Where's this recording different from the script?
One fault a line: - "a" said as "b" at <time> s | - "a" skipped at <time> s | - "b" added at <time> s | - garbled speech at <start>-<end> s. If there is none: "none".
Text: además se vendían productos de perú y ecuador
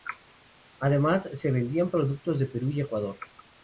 none